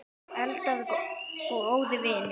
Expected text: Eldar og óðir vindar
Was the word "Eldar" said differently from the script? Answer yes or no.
no